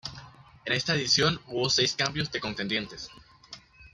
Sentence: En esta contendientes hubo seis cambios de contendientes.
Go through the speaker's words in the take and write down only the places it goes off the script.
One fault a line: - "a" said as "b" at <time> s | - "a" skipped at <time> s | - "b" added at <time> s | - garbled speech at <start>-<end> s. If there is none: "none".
- "contendientes" said as "edición" at 0.9 s